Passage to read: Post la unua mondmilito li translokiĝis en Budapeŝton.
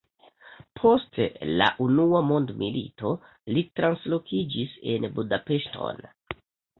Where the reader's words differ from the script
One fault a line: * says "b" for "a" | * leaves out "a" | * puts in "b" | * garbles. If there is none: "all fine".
all fine